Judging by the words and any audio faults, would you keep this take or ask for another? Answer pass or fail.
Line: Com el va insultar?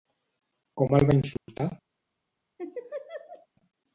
fail